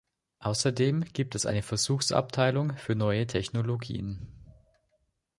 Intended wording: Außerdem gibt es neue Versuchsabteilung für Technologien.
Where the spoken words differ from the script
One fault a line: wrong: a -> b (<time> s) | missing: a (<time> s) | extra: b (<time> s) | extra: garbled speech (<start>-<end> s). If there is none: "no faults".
wrong: neue -> eine (1.4 s)
extra: neue (3.0 s)